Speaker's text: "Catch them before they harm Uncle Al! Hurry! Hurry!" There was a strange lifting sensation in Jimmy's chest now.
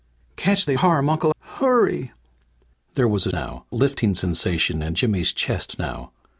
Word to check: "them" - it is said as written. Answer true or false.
false